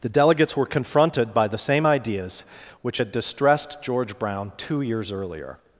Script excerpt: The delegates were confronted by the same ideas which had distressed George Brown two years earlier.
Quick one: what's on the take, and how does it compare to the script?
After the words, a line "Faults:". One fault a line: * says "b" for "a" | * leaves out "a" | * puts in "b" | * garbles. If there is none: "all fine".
The delegates were confronted by the same ideas which had distressed George Brown two years earlier.
Faults:
all fine